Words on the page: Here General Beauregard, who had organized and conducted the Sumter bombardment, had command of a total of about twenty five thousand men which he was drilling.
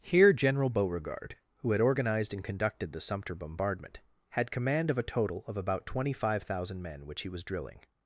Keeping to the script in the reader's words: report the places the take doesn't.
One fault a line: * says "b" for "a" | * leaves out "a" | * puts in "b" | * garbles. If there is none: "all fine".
all fine